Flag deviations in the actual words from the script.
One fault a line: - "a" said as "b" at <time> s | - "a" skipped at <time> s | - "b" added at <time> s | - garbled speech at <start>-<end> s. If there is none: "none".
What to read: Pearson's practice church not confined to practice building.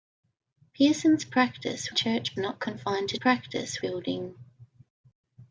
none